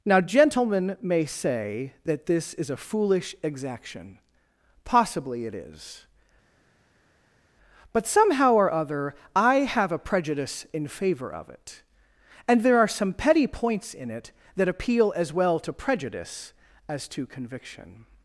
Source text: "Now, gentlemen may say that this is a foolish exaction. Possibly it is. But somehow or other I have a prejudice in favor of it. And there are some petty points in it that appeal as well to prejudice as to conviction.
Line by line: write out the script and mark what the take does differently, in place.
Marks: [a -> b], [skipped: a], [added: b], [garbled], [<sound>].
"Now, gentlemen may say that this is a foolish exaction. Possibly it is. But somehow or other I have a prejudice in favor of it. And there are some petty points in it that appeal as well to prejudice as to conviction.